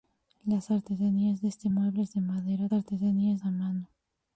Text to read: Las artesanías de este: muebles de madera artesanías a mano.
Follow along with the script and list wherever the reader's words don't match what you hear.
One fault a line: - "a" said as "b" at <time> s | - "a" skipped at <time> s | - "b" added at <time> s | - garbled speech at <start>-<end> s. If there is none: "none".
none